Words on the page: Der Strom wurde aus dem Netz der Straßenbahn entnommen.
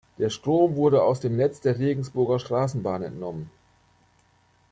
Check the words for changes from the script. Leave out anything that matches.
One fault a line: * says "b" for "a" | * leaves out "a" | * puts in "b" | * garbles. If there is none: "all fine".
* puts in "Regensburger"